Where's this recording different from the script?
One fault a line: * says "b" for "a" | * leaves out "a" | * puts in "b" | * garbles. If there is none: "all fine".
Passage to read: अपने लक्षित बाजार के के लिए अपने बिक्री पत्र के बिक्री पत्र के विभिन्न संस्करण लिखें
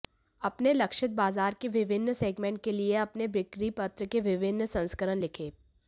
* puts in "विभिन्न सेगमेंट"
* leaves out "बिक्री पत्र के"